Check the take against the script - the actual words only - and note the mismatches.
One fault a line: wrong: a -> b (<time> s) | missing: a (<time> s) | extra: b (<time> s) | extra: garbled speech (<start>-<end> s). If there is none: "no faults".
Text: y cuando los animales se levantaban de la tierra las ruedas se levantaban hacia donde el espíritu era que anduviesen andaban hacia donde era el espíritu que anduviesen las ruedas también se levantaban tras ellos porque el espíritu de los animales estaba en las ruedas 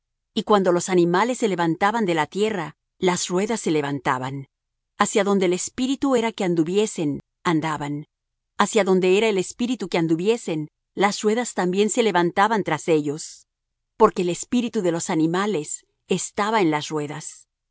no faults